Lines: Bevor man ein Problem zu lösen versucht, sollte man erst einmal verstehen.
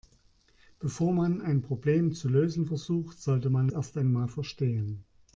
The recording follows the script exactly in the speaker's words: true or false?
true